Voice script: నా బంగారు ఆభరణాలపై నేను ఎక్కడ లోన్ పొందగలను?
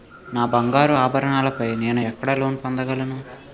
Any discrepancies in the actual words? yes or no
no